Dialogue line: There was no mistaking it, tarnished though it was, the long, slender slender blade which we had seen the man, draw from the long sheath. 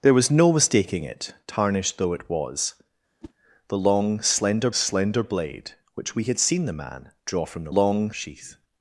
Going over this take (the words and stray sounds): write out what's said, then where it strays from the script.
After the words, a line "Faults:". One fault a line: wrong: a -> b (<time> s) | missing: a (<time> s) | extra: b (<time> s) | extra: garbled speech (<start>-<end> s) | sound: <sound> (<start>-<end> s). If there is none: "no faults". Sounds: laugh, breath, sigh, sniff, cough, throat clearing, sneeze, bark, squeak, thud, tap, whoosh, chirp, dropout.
There was no mistaking it, tarnished though it was, the long, slender slender blade which we had seen the man, draw from the long sheath.
Faults:
sound: whoosh (3.2-3.3 s)